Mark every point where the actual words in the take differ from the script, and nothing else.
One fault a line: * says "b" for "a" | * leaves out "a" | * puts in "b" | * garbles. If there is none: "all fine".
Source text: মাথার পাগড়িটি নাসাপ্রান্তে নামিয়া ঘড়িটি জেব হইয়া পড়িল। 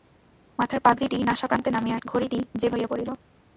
all fine